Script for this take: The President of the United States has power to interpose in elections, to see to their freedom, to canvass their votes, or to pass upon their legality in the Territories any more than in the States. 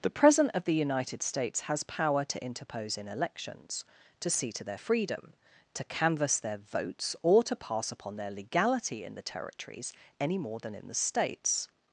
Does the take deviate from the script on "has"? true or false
false